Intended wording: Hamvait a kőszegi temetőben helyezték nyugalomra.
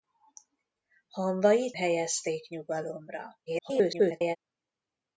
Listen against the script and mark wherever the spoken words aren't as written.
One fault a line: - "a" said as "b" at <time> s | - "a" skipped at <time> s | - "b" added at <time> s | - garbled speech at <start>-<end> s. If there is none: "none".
- "a kőszegi temetőben" skipped at 1.8 s
- garbled speech at 3.5-4.4 s